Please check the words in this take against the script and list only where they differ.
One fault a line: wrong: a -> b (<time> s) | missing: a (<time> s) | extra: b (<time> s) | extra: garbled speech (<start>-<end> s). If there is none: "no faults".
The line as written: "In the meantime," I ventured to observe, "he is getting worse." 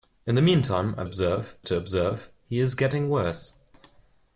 wrong: ventured -> observe (1.0 s)